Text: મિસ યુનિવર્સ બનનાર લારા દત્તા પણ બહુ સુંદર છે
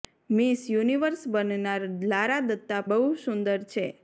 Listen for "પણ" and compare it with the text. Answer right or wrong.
wrong